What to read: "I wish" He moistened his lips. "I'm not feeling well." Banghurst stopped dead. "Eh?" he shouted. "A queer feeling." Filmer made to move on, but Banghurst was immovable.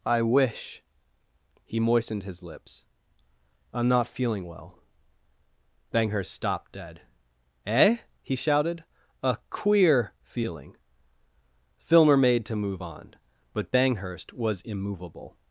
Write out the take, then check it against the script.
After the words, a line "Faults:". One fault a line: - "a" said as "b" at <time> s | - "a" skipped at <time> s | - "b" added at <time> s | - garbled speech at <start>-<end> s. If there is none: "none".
"I wish" He moistened his lips. "I'm not feeling well." Banghurst stopped dead. "Eh?" he shouted. "A queer feeling." Filmer made to move on, but Banghurst was immovable.
Faults:
none